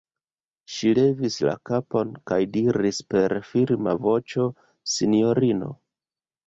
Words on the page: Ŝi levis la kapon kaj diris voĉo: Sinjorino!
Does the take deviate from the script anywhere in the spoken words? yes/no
yes